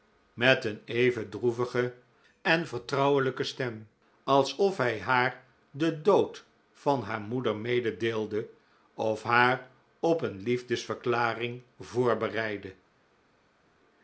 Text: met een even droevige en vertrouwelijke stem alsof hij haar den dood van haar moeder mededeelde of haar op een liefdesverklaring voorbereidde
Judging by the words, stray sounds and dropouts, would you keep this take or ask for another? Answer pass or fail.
pass